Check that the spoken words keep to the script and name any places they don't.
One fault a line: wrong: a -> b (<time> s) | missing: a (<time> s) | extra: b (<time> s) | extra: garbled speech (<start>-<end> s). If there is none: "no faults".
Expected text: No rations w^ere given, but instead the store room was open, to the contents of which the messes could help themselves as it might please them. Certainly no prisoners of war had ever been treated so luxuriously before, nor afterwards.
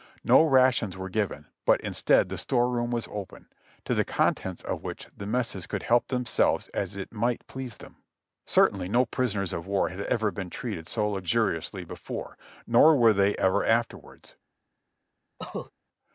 extra: were they ever (13.0 s)